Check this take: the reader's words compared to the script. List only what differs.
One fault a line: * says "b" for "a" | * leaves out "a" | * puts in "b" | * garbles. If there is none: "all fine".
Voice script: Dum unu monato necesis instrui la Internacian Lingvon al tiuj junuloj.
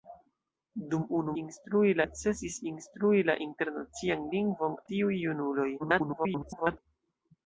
* says "instrui" for "monato"
* leaves out "al"
* garbles